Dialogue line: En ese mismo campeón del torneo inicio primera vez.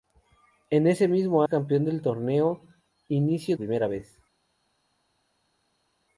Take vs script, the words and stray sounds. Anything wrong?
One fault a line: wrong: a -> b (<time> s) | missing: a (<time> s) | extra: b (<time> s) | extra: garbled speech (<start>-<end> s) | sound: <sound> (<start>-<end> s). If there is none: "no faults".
no faults